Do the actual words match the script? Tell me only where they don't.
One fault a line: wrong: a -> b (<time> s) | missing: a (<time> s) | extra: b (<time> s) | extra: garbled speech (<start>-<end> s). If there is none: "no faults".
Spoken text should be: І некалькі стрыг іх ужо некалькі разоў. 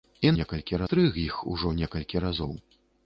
no faults